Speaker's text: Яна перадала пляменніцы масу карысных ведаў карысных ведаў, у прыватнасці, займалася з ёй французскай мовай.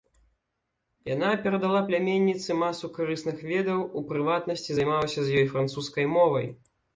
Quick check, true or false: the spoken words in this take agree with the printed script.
false